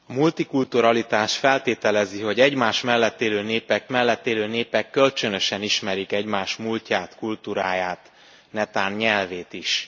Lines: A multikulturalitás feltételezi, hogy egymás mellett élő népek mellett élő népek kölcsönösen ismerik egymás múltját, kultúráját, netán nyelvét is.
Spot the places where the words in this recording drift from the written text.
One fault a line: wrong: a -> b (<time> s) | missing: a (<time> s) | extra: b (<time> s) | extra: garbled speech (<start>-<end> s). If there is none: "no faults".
no faults